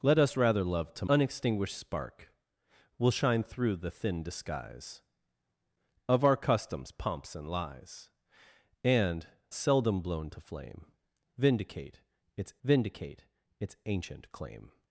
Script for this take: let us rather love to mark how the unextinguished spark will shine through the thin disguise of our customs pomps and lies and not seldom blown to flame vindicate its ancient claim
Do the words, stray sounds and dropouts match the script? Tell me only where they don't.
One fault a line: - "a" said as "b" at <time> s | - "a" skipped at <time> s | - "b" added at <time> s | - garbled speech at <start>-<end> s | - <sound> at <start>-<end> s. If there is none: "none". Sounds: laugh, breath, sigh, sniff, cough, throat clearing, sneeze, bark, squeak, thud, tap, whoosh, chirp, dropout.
- "mark how the" skipped at 1.1 s
- "not" skipped at 9.3 s
- "vindicate its" added at 12.6 s